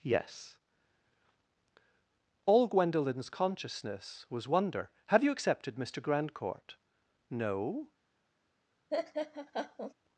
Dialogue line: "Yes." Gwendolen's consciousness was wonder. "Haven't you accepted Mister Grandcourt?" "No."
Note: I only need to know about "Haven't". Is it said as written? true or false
false